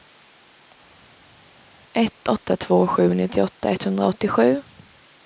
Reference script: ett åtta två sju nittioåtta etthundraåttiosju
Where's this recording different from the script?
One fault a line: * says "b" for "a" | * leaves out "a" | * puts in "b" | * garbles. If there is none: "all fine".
all fine